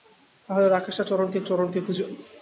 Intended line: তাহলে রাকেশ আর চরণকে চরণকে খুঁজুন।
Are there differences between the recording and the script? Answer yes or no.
no